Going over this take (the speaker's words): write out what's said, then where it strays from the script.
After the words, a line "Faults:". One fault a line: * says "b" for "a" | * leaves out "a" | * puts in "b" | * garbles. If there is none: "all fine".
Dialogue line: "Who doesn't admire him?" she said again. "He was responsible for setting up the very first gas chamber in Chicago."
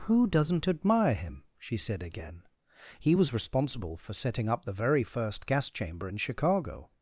"Who doesn't admire him?" she said again. "He was responsible for setting up the very first gas chamber in Chicago."
Faults:
all fine